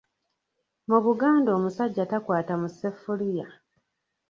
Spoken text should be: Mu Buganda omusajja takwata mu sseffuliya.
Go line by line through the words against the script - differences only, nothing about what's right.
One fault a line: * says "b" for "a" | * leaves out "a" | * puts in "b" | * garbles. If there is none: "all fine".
all fine